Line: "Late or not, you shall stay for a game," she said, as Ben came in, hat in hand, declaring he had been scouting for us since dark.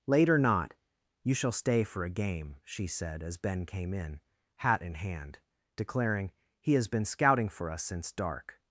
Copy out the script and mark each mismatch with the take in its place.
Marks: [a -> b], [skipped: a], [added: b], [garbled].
"Late or not, you shall stay for a game," she said, as Ben came in, hat in hand, declaring he [had -> has] been scouting for us since dark.